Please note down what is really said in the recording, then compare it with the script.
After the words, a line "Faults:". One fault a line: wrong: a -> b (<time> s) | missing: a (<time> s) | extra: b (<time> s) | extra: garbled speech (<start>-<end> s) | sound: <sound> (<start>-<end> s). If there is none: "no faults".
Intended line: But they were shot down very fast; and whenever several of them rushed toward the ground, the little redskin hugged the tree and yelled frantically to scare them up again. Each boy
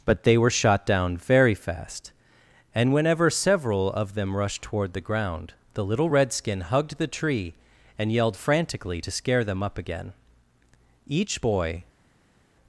But they were shot down very fast; and whenever several of them rushed toward the ground, the little redskin hugged the tree and yelled frantically to scare them up again. Each boy
Faults:
no faults